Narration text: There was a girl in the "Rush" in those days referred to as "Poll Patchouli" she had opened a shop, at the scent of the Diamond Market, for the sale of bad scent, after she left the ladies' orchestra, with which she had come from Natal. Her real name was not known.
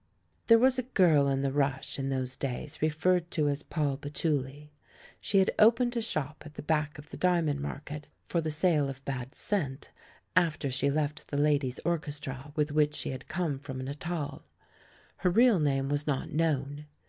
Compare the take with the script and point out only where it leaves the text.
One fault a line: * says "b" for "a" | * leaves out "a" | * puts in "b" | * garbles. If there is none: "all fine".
* says "back" for "scent"